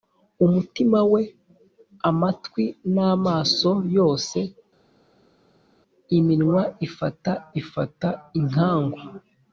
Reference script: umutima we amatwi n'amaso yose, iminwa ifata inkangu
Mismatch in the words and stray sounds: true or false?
true